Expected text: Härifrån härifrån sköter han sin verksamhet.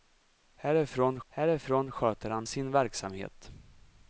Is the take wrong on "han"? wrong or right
right